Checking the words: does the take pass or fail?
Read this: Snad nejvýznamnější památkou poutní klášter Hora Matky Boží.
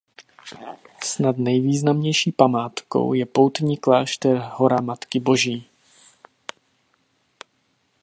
fail